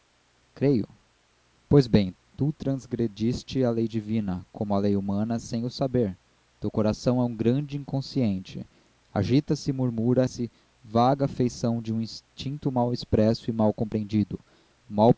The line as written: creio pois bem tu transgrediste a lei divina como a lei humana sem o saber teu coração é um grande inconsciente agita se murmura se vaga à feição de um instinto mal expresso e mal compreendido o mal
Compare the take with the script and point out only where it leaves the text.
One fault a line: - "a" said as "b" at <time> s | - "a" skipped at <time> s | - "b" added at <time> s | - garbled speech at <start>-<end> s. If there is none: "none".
none